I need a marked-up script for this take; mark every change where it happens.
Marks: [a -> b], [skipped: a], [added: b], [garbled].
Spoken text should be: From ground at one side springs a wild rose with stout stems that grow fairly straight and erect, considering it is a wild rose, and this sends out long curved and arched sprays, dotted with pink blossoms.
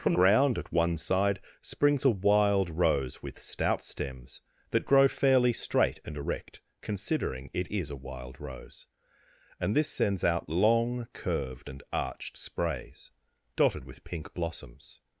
From ground at one side springs a wild rose with stout stems that grow fairly straight and erect, considering it is a wild rose, and this sends out long curved and arched sprays, dotted with pink blossoms.